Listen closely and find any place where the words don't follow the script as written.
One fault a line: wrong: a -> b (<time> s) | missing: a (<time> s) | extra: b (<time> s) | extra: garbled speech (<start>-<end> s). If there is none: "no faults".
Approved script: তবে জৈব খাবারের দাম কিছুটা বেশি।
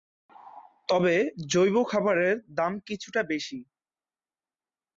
no faults